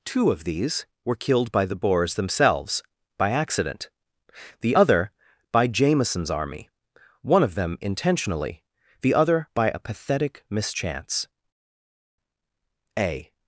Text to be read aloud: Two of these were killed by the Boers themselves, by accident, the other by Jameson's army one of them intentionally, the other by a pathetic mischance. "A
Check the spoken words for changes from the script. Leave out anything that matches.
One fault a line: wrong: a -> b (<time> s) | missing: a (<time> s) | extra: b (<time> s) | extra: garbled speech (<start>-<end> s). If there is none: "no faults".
no faults